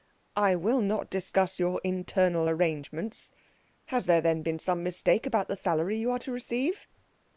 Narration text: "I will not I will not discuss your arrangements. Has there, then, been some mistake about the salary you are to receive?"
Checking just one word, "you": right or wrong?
right